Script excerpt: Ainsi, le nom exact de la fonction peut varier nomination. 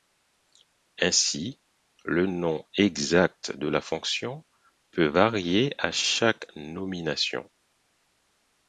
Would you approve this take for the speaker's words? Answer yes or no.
no